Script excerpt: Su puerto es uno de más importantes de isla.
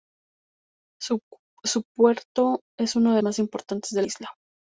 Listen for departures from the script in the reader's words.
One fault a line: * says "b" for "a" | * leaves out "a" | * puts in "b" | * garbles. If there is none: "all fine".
all fine